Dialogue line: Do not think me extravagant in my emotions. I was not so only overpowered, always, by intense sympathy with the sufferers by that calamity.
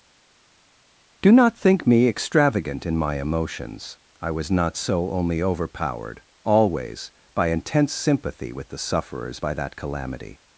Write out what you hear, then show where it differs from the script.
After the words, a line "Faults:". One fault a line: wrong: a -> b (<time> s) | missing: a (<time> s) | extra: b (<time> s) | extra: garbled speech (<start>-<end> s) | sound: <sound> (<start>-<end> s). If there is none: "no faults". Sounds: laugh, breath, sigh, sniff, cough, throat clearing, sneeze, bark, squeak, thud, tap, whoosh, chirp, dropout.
Do not think me extravagant in my emotions. I was not so only overpowered, always, by intense sympathy with the sufferers by that calamity.
Faults:
no faults